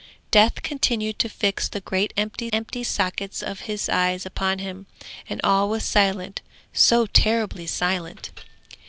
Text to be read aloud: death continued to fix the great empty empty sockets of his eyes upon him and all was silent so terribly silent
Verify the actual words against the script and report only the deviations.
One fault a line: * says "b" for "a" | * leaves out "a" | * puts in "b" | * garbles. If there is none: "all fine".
all fine